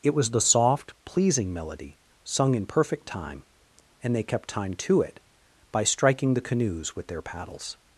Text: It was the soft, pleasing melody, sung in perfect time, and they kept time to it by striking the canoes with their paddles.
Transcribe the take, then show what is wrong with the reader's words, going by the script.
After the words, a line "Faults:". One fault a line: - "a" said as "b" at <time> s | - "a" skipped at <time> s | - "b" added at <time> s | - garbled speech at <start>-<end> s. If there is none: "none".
It was the soft, pleasing melody, sung in perfect time, and they kept time to it by striking the canoes with their paddles.
Faults:
none